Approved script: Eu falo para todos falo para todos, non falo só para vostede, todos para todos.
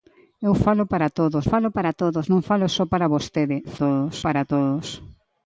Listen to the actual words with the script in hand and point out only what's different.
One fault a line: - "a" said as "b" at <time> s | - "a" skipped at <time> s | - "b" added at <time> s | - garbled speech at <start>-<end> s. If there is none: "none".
none